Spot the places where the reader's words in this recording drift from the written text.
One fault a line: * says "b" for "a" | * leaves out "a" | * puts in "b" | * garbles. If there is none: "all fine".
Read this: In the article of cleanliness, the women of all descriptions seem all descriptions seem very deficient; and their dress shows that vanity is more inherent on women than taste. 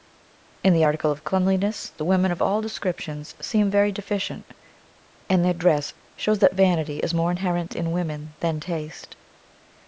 * leaves out "all descriptions seem"
* says "in" for "on"